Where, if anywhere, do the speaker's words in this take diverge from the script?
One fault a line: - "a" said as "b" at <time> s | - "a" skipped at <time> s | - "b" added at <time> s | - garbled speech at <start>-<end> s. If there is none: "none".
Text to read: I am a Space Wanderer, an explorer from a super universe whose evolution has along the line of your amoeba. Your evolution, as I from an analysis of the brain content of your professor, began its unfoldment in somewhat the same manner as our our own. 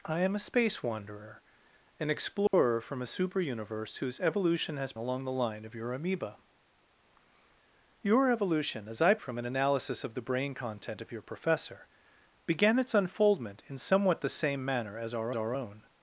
none